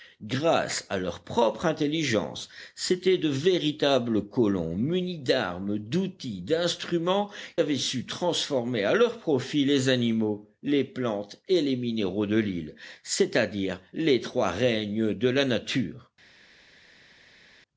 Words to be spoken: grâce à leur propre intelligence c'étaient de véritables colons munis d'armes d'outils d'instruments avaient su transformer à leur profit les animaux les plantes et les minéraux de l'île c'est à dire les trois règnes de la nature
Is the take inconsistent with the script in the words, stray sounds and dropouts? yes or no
no